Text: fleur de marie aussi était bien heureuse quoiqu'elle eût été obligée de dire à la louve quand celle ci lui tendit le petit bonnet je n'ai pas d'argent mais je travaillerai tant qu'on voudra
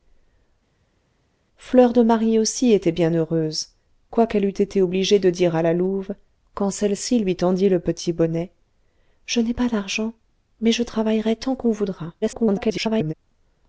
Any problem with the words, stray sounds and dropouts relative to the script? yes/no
yes